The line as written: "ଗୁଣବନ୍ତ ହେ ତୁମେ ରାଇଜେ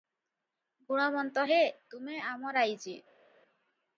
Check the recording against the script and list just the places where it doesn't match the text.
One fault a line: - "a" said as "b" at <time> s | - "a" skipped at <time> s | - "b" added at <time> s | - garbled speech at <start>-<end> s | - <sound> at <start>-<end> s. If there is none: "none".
- "ଆମ" added at 2.3 s